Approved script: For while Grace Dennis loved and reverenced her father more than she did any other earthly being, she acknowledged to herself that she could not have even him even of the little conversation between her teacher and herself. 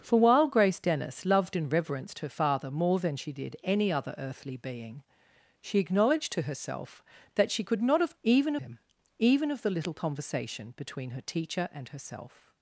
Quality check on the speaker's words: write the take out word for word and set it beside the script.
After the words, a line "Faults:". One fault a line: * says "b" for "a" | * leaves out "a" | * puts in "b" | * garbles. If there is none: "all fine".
For while Grace Dennis loved and reverenced her father more than she did any other earthly being, she acknowledged to herself that she could not have even him even of the little conversation between her teacher and herself.
Faults:
all fine